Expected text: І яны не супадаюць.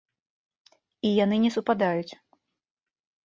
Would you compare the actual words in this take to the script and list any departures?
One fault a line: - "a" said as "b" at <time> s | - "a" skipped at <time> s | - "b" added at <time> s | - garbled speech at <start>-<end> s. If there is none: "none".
none